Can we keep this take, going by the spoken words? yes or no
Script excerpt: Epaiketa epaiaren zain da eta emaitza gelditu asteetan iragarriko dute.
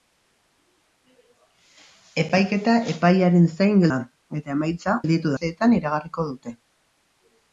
yes